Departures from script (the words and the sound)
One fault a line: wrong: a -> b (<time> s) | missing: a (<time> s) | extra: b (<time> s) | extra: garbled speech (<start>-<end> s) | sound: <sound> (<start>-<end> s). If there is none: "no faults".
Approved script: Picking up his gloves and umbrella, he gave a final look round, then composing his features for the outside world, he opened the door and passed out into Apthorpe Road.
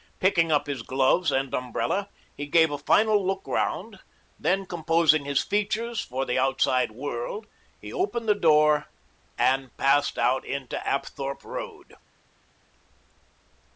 no faults